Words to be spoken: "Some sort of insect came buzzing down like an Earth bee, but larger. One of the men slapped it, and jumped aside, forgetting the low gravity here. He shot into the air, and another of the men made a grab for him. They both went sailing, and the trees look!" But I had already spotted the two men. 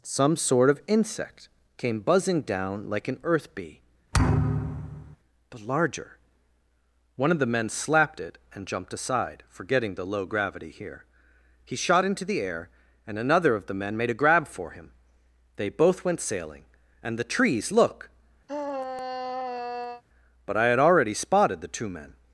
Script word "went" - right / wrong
right